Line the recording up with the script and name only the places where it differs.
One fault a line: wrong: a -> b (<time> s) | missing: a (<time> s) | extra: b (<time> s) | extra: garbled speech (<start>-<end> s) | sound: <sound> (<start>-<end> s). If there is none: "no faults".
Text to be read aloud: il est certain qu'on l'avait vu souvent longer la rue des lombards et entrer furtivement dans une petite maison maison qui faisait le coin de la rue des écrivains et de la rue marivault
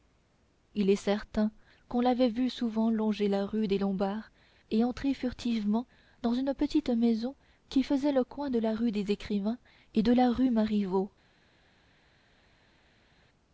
missing: maison (7.3 s)